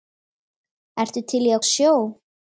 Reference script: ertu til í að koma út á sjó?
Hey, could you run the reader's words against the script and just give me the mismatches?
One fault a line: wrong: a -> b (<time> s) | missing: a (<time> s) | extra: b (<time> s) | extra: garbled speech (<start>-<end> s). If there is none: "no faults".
missing: koma út (1.6 s)